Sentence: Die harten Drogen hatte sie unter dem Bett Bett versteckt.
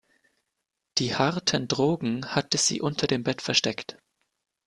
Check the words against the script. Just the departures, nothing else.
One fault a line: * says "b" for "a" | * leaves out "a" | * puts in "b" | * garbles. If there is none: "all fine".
* leaves out "Bett"